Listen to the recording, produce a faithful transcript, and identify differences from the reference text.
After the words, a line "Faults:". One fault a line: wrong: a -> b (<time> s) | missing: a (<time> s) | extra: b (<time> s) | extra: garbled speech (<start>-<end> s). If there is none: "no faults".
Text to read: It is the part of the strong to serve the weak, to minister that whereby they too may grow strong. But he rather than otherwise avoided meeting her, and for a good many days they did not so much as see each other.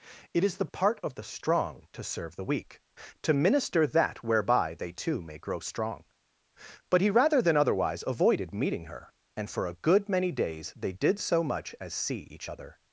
It is the part of the strong to serve the weak, to minister that whereby they too may grow strong. But he rather than otherwise avoided meeting her, and for a good many days they did so much as see each other.
Faults:
missing: not (11.2 s)